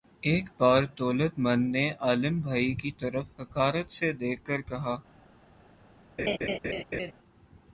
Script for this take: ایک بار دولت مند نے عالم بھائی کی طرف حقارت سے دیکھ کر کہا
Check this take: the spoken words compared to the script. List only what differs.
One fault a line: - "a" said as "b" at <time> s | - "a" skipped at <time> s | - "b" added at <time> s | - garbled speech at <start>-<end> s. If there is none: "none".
none